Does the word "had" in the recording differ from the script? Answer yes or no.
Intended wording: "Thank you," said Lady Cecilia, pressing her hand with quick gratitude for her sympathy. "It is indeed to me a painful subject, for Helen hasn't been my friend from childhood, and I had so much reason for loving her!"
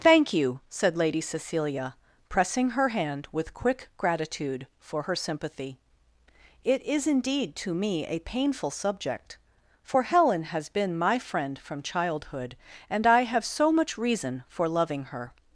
yes